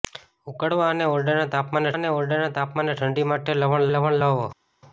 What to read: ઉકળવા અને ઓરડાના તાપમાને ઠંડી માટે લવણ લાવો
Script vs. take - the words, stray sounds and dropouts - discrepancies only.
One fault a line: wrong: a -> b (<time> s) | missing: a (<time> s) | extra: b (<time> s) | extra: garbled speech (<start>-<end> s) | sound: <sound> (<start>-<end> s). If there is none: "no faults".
extra: અને ઓરડાના તાપમાને (1.9 s)
extra: લવણ (3.9 s)